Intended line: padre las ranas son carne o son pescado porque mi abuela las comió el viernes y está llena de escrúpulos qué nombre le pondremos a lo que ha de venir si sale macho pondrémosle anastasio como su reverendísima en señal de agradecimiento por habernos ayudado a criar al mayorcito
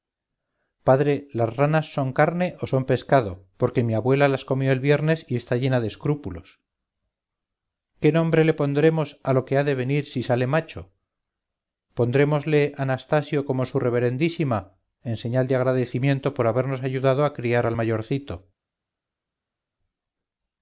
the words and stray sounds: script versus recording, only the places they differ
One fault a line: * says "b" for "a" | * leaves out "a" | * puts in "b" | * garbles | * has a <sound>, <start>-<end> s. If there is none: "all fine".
all fine